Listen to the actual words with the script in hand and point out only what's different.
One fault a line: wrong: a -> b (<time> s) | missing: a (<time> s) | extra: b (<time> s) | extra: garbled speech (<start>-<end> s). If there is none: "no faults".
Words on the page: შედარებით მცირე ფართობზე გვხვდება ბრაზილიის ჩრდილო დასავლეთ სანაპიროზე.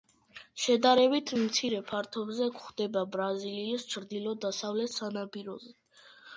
no faults